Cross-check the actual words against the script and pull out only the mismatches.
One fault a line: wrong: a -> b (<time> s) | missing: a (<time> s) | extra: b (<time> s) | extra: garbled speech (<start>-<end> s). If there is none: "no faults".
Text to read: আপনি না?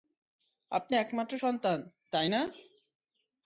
extra: একমাত্র সন্তান তাই (1.0 s)